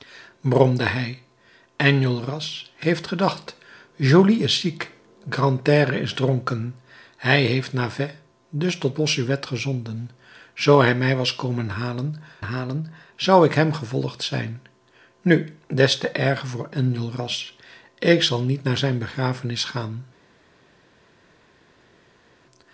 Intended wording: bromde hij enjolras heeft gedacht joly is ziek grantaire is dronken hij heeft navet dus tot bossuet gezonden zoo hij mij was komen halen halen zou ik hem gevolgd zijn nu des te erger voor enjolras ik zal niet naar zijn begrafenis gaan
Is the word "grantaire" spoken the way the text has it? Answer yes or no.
yes